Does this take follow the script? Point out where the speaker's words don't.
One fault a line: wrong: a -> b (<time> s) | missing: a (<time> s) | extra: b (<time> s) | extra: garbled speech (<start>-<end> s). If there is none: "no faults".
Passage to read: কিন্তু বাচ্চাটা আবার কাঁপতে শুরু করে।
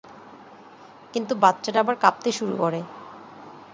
no faults